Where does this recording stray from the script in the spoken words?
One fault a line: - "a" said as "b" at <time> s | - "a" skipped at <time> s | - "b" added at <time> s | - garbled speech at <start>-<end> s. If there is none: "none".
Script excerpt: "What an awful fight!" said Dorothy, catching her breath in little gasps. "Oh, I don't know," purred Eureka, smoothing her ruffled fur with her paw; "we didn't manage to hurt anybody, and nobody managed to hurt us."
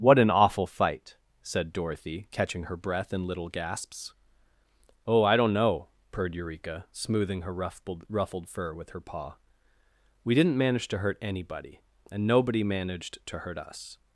- "ruffled" added at 8.1 s